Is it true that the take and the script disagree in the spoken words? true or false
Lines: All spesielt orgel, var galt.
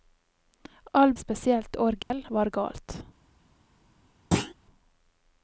false